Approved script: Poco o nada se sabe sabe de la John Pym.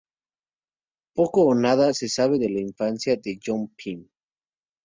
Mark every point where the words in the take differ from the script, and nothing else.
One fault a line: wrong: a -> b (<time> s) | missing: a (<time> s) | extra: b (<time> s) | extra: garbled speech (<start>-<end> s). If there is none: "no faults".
missing: sabe (2.4 s)
extra: infancia de (2.6 s)